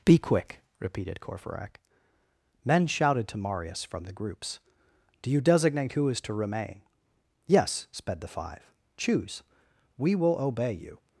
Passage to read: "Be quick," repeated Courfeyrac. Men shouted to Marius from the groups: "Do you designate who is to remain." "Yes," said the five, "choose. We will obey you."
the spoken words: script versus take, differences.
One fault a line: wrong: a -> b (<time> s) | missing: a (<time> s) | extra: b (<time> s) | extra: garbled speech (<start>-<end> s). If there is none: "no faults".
wrong: said -> sped (7.9 s)